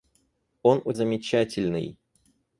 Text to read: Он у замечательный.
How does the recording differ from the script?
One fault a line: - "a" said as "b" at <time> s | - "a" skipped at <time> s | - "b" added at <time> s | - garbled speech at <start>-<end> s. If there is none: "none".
none